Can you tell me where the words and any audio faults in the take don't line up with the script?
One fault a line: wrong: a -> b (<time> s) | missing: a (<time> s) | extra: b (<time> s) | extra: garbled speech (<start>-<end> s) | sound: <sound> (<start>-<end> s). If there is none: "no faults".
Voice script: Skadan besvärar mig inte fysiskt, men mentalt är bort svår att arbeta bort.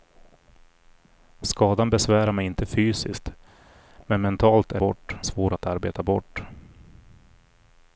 no faults